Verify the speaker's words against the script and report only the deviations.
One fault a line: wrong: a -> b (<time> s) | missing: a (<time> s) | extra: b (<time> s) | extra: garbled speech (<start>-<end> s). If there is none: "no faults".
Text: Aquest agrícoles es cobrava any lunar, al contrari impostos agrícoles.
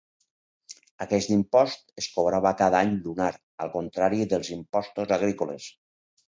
wrong: agrícoles -> impost (1.4 s)
extra: cada (2.6 s)
extra: dels (4.4 s)